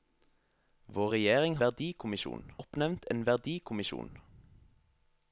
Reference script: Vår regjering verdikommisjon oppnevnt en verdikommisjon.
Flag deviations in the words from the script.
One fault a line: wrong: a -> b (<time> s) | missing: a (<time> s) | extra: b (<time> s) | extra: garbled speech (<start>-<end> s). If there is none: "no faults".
no faults